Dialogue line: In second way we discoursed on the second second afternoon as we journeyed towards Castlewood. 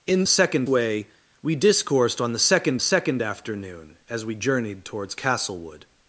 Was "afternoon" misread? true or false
false